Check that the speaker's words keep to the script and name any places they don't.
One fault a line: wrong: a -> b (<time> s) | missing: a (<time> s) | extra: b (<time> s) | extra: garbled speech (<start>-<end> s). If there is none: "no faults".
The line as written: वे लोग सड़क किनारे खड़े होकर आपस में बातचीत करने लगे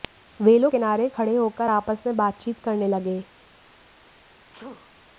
missing: सड़क (0.7 s)